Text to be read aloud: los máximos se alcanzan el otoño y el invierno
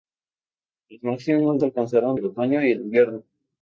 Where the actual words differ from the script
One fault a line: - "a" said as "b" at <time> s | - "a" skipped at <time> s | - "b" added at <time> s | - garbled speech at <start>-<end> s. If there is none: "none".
none